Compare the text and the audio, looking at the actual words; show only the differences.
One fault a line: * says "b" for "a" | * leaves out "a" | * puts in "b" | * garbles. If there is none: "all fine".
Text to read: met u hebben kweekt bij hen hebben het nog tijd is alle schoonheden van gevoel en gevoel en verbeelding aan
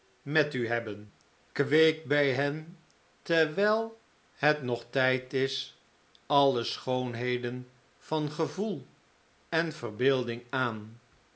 * says "terwijl" for "hebben"
* leaves out "gevoel en"